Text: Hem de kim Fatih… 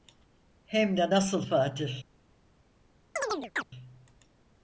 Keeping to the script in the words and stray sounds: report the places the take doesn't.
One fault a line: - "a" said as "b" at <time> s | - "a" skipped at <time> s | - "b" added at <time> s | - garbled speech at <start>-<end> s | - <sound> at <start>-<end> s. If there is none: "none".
- "kim" said as "nasıl" at 1.1 s
- chirp at 3.2-3.6 s